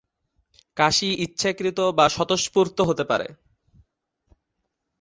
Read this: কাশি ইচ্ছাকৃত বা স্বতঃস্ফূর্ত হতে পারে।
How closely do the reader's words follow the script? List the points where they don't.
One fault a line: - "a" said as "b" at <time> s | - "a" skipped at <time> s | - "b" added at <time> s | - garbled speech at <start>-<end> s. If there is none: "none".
none